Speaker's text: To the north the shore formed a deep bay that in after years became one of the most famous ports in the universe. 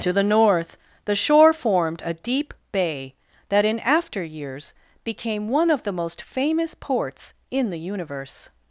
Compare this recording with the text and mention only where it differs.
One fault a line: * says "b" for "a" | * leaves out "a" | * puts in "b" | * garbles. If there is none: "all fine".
all fine